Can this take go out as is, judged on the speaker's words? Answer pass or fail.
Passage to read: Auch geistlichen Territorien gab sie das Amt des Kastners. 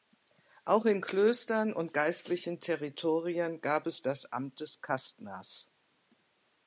fail